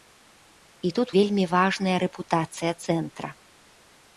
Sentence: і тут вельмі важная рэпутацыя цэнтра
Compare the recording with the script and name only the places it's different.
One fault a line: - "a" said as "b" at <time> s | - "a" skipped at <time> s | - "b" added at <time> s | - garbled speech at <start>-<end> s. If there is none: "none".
none